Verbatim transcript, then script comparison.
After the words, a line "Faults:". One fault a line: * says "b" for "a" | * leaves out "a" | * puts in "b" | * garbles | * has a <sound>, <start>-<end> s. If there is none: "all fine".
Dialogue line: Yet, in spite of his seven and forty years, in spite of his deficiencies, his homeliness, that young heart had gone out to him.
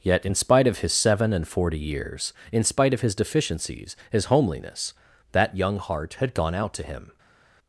Yet, in spite of his seven and forty years, in spite of his deficiencies, his homeliness, that young heart had gone out to him.
Faults:
all fine